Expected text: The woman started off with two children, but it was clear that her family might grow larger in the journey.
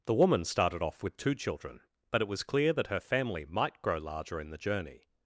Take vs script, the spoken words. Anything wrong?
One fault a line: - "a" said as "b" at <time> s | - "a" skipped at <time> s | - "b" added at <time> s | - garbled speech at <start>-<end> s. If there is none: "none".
none